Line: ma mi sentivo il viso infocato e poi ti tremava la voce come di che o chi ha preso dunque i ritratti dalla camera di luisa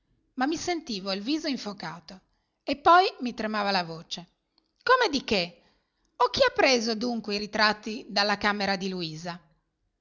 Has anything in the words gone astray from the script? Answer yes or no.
yes